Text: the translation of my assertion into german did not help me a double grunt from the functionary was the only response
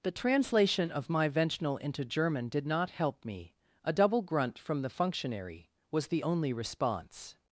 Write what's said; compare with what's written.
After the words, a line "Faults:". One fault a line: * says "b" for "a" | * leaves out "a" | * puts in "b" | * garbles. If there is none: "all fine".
the translation of my ventional into german did not help me a double grunt from the functionary was the only response
Faults:
* says "ventional" for "assertion"